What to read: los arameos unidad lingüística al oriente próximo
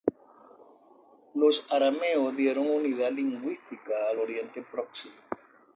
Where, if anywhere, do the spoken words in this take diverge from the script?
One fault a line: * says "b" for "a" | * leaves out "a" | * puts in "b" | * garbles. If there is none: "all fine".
* puts in "dieron"